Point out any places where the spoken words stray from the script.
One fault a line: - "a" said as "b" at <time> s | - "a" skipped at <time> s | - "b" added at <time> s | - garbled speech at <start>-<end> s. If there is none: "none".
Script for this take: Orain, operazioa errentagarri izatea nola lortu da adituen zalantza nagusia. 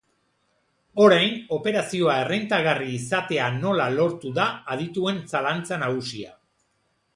none